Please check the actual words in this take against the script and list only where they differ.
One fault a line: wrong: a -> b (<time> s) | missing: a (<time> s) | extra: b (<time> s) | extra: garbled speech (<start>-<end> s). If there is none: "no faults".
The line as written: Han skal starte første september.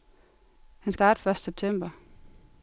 missing: skal (0.9 s)